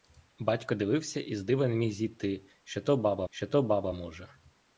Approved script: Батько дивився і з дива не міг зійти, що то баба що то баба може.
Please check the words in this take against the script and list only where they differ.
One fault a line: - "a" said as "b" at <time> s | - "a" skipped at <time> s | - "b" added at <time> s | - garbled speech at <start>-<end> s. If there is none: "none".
none